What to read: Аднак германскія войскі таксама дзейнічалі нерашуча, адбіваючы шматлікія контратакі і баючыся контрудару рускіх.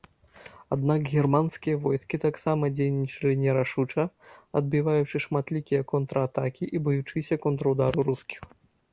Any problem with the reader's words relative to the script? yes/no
no